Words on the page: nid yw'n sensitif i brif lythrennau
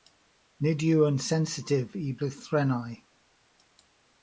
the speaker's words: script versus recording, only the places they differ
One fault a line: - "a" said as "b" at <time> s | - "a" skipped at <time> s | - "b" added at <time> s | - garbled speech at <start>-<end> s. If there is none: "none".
- "brif" skipped at 2.1 s